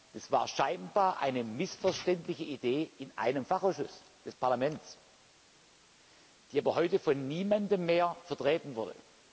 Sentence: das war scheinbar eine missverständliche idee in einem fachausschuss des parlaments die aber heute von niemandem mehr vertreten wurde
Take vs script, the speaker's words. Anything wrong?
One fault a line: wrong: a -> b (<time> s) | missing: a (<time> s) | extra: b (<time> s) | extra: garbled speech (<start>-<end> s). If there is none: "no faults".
no faults